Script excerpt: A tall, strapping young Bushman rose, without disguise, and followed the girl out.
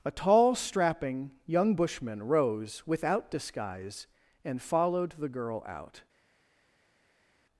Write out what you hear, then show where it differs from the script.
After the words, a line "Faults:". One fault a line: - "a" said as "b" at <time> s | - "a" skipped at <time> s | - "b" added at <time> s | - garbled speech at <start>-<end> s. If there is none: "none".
A tall, strapping young Bushman rose, without disguise, and followed the girl out.
Faults:
none